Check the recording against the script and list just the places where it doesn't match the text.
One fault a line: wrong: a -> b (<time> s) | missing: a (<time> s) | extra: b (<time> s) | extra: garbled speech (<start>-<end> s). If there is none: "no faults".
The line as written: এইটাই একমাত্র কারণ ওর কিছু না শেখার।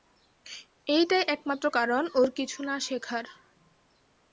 no faults